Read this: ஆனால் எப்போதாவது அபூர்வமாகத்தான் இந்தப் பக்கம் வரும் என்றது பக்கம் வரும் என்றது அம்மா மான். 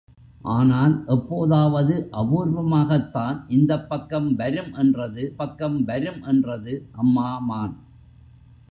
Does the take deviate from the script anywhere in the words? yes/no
no